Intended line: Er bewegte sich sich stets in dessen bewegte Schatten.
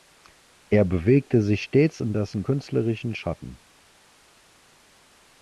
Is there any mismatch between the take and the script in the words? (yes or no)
yes